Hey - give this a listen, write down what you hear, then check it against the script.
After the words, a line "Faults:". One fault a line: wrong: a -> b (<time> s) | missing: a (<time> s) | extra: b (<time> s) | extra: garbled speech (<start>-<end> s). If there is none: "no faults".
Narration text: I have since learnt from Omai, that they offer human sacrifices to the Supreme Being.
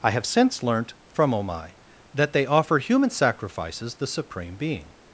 I have since learnt from Omai, that they offer human sacrifices the Supreme Being.
Faults:
missing: to (4.0 s)